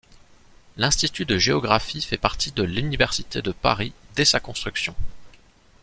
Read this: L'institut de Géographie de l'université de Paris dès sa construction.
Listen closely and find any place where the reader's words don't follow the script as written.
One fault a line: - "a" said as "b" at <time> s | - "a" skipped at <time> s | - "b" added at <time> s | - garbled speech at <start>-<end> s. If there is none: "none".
- "fait partie" added at 2.0 s